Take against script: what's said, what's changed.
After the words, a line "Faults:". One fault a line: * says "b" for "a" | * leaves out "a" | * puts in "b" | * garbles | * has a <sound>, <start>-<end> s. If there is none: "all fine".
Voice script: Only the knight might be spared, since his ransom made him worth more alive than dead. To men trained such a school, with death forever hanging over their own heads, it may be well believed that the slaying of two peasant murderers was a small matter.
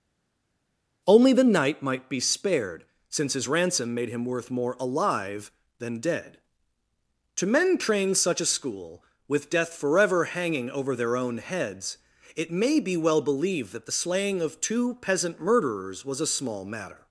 Only the knight might be spared, since his ransom made him worth more alive than dead. To men trained such a school, with death forever hanging over their own heads, it may be well believed that the slaying of two peasant murderers was a small matter.
Faults:
all fine